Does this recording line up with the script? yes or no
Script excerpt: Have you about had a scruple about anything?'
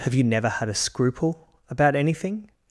no